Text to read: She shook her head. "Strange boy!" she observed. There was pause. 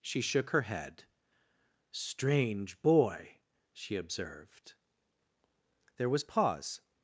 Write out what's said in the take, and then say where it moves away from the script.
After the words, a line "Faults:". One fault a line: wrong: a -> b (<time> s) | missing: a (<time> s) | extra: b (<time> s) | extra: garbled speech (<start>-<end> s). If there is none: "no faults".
She shook her head. "Strange boy!" she observed. There was pause.
Faults:
no faults